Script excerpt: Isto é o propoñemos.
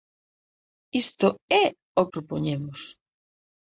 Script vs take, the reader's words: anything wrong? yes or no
no